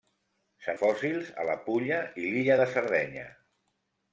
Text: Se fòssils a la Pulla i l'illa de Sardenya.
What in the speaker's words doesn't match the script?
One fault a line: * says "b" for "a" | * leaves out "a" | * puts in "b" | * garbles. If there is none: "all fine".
all fine